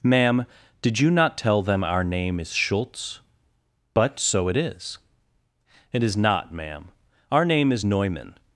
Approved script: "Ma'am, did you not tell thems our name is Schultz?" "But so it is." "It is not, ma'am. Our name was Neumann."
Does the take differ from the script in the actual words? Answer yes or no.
yes